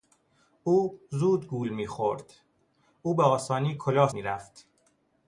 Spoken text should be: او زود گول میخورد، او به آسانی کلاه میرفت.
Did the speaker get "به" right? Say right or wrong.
right